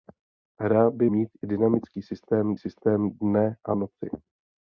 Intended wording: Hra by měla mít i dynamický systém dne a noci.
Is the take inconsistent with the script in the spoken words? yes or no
yes